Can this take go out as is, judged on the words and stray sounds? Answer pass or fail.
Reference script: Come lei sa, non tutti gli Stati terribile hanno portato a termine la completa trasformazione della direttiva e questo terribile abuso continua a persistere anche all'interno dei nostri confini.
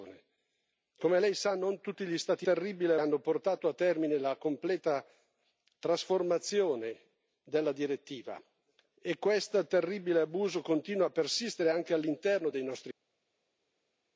pass